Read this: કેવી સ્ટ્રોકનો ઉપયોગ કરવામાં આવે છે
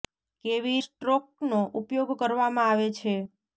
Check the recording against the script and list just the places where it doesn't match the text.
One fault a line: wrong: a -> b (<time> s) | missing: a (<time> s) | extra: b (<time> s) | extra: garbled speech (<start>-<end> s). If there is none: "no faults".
no faults